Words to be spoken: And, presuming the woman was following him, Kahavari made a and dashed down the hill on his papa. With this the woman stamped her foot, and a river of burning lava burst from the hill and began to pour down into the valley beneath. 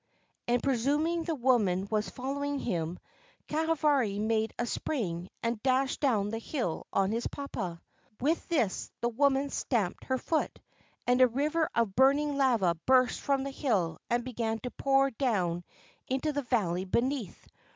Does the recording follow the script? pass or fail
fail